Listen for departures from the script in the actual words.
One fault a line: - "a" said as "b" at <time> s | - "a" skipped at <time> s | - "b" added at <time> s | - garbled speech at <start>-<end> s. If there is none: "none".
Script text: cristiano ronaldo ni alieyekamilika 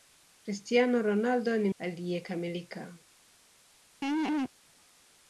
none